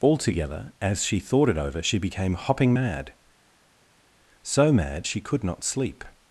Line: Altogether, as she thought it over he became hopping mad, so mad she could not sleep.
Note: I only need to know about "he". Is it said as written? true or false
false